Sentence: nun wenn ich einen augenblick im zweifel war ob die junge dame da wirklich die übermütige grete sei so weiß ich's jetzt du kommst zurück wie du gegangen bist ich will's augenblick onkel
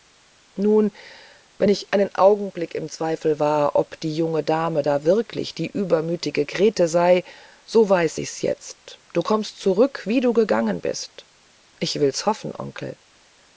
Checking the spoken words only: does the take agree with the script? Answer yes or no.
no